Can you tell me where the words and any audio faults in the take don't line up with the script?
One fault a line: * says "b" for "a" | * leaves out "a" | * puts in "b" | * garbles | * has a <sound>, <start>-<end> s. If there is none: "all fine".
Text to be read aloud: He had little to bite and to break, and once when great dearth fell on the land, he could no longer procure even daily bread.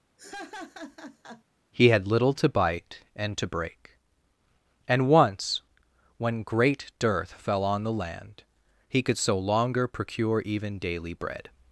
* has a laugh, 0.2-1.4 s
* says "so" for "no"